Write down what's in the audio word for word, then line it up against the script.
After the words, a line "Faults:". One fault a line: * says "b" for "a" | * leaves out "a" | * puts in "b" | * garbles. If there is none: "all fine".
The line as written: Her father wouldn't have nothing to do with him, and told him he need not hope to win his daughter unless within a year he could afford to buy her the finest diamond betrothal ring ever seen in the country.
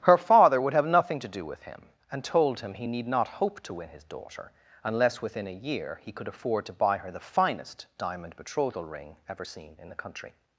Her father would have nothing to do with him, and told him he need not hope to win his daughter unless within a year he could afford to buy her the finest diamond betrothal ring ever seen in the country.
Faults:
* says "would" for "wouldn't"